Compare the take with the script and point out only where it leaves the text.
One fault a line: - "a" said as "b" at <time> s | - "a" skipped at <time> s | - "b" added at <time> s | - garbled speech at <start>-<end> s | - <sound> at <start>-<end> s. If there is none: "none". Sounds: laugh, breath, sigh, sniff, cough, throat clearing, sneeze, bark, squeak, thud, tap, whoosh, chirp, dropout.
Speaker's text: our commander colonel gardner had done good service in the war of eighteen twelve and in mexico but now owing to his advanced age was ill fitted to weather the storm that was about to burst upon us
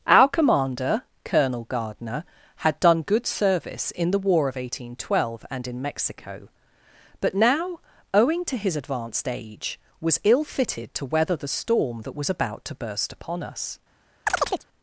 - chirp at 14.3-14.7 s